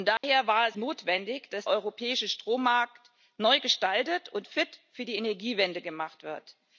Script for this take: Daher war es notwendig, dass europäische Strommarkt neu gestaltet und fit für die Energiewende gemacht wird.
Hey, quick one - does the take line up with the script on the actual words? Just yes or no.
yes